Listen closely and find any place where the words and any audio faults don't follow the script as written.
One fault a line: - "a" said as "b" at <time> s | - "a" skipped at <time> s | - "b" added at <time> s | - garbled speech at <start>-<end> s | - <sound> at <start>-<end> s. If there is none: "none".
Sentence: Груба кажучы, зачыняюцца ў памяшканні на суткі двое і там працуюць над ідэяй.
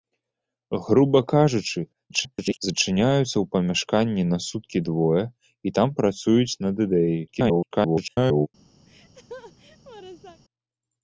- garbled speech at 2.1-2.6 s
- garbled speech at 7.3-8.5 s
- laugh at 8.9-10.4 s